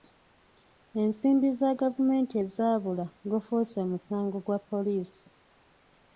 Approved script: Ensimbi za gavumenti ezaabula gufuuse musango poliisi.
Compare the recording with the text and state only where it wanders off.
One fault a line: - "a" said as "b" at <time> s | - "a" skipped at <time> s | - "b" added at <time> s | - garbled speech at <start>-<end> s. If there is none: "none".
- "gwa" added at 4.4 s